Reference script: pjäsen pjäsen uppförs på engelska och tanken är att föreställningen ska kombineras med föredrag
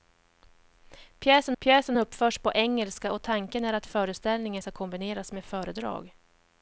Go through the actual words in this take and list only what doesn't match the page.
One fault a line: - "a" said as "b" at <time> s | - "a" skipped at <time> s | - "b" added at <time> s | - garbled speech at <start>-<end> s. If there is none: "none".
none